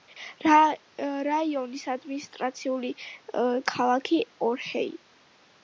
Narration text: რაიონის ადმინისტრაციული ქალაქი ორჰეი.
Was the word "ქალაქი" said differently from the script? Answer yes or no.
no